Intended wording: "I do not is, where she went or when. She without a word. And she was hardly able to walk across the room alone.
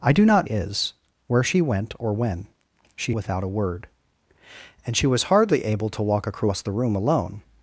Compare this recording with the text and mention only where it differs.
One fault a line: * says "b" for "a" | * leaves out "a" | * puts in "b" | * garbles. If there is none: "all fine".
all fine